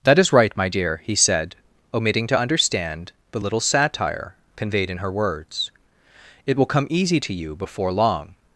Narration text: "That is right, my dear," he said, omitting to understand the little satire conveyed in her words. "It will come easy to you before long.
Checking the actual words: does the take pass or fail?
pass